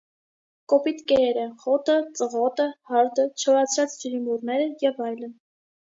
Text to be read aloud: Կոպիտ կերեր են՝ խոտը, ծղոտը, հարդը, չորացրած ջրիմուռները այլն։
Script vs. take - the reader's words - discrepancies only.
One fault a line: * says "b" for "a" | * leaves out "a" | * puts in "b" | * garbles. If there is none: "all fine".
* puts in "և"